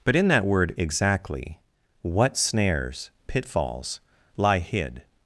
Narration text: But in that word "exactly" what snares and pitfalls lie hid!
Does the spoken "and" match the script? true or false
false